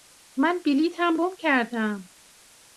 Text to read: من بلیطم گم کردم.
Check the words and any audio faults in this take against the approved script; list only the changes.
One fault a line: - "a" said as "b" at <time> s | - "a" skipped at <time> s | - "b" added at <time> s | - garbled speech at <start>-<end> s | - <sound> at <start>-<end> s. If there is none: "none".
none